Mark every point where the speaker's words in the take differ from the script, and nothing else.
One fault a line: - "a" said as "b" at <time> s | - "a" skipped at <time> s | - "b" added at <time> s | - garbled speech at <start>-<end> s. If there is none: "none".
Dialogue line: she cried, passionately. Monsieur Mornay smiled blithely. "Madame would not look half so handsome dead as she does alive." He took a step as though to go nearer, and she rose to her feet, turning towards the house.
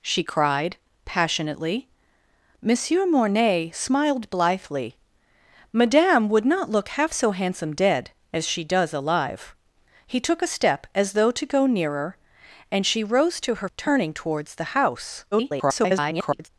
- "feet" skipped at 13.7 s
- garbled speech at 15.3-16.5 s